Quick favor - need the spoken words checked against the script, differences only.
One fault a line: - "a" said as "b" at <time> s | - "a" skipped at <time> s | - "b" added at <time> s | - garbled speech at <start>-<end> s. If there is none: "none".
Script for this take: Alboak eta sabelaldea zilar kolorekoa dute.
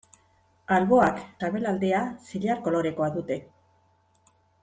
- "eta" skipped at 1.2 s